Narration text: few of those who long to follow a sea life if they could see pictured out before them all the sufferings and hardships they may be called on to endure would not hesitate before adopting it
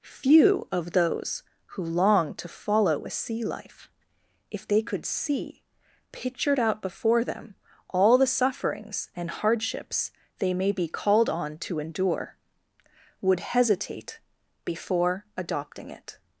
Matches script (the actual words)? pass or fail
fail